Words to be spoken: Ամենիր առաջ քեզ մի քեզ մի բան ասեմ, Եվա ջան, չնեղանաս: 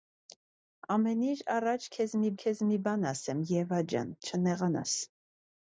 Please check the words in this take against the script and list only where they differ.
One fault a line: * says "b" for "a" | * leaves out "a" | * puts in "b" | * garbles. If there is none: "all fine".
all fine